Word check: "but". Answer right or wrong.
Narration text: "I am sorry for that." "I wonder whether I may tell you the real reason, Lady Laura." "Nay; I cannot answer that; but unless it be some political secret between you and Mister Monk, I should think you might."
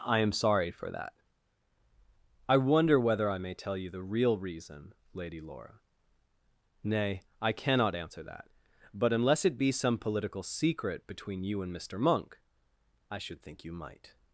right